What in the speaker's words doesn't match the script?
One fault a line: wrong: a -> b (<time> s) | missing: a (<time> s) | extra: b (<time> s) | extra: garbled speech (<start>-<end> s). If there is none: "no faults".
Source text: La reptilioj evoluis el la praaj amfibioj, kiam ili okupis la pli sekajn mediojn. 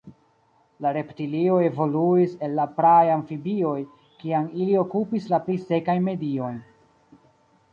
no faults